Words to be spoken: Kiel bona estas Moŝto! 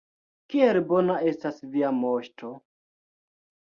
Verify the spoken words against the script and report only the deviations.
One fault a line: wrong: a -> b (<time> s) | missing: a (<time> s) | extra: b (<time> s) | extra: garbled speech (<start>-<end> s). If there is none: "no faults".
extra: Via (1.8 s)